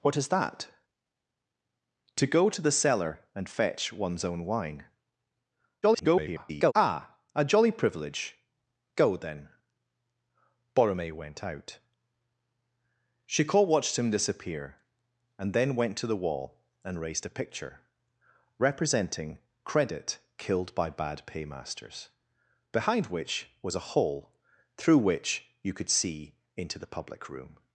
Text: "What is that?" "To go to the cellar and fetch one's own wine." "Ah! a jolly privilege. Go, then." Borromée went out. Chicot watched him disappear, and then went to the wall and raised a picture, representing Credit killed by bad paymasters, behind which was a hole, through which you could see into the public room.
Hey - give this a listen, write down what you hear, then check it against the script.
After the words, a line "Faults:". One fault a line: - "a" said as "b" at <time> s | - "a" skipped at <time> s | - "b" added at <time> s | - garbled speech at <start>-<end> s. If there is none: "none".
"What is that?" "To go to the cellar and fetch one's own wine." [garbled] "Ah! a jolly privilege. Go, then." Borromée went out. Chicot watched him disappear, and then went to the wall and raised a picture, representing Credit killed by bad paymasters, behind which was a hole, through which you could see into the public room.
Faults:
- garbled speech at 5.8-6.7 s